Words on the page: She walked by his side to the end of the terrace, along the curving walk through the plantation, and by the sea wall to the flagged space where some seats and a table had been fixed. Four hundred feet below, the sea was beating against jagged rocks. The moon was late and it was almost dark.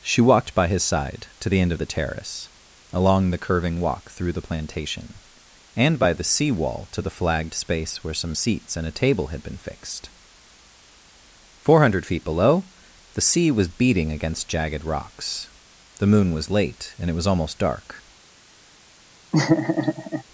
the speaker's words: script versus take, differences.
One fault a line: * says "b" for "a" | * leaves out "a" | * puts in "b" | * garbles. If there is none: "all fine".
all fine